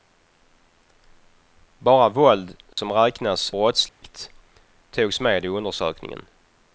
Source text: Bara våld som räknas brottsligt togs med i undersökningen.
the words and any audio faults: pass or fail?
fail